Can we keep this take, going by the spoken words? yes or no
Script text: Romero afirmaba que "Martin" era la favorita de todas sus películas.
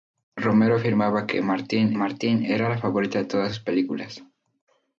no